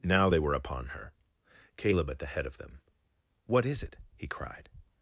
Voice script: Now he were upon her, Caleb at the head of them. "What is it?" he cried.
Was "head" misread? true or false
false